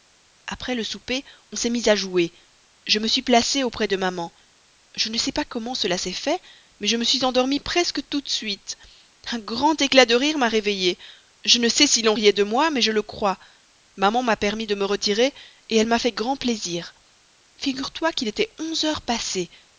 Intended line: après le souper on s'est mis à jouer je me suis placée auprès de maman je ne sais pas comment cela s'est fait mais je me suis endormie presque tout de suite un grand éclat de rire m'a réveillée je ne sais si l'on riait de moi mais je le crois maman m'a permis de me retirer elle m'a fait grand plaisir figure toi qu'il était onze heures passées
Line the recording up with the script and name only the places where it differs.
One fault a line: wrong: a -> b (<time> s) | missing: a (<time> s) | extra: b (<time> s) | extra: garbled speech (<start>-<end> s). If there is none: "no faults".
no faults